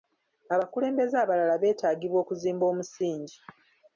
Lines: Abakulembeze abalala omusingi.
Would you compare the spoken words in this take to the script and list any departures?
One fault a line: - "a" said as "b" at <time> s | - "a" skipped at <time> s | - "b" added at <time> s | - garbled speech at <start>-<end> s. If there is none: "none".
- "beetaagibwa okuzimba" added at 1.6 s